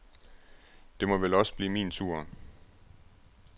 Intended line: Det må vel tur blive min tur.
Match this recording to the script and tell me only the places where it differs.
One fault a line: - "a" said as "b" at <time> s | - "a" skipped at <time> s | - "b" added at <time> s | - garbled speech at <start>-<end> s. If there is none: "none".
- "tur" said as "også" at 1.3 s